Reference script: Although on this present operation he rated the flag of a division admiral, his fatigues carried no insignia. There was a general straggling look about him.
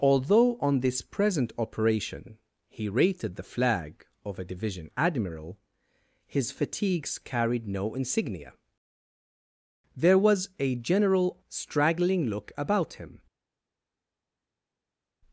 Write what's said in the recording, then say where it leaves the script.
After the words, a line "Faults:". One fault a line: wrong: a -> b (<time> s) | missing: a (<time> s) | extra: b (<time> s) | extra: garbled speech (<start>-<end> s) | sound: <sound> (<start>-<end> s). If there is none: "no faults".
Although on this present operation he rated the flag of a division admiral, his fatigues carried no insignia. There was a general straggling look about him.
Faults:
no faults